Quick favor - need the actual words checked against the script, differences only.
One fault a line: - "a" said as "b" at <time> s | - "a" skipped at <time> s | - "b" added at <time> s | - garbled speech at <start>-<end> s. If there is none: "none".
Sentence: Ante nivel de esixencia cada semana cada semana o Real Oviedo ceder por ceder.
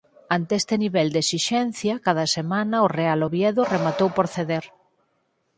- "este" added at 0.6 s
- "cada semana" skipped at 2.8 s
- "ceder" said as "rematou" at 3.7 s